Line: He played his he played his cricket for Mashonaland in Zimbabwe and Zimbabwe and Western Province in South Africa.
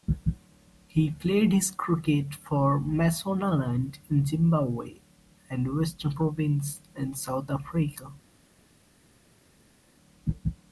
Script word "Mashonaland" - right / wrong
right